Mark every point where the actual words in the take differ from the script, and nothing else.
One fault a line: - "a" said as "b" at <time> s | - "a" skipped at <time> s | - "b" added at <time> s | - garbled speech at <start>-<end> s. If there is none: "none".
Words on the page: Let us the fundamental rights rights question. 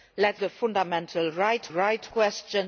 none